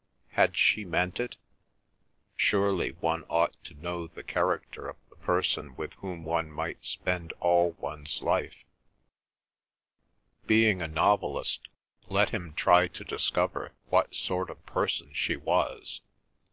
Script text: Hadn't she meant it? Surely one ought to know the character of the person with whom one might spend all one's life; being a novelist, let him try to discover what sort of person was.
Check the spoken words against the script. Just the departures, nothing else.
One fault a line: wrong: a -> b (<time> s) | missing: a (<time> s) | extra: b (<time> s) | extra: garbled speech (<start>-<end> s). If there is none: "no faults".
wrong: Hadn't -> Had (0.3 s)
extra: she (15.1 s)